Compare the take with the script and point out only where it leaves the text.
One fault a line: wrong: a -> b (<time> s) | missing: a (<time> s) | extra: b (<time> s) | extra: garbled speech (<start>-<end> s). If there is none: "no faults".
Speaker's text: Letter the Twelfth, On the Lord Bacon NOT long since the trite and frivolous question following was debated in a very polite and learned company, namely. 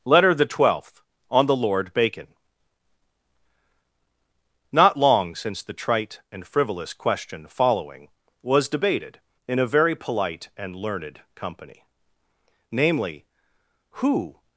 extra: Who (13.9 s)